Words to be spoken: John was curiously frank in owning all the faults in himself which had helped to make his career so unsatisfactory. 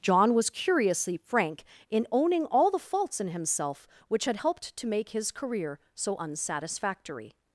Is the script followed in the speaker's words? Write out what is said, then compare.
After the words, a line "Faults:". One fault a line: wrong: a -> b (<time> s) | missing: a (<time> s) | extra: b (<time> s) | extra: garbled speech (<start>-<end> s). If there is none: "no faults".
John was curiously frank in owning all the faults in himself which had helped to make his career so unsatisfactory.
Faults:
no faults